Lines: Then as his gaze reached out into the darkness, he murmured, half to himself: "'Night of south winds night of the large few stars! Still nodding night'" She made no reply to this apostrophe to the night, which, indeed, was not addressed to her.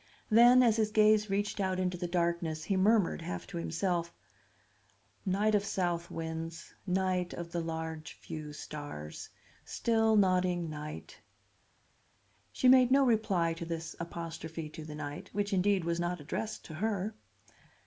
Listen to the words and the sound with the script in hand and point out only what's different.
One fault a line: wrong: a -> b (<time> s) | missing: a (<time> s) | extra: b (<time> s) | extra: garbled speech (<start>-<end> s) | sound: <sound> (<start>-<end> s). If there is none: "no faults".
no faults